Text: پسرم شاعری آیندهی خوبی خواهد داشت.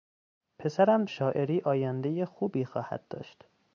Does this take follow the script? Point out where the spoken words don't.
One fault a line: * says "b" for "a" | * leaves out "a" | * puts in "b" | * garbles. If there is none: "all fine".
all fine